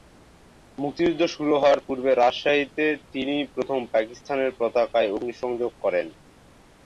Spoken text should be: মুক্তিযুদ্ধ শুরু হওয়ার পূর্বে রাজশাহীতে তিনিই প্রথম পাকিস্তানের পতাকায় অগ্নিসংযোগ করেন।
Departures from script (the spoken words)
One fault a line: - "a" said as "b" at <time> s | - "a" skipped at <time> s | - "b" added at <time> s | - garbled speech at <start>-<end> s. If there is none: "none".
none